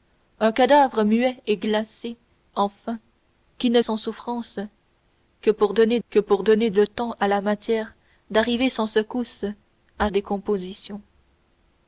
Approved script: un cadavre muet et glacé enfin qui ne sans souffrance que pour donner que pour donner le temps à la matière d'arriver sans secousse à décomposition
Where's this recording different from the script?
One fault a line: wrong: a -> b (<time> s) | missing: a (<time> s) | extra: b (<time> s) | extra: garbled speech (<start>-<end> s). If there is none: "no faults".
no faults